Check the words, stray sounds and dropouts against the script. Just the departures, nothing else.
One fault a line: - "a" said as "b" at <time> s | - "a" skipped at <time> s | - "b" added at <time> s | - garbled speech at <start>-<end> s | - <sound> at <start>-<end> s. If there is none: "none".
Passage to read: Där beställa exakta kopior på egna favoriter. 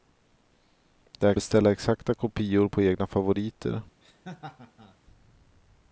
- laugh at 4.0-5.0 s